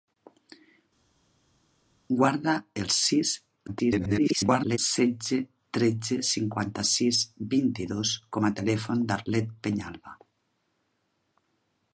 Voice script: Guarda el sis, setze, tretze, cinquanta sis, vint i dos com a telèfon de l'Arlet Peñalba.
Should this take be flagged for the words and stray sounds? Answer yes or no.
yes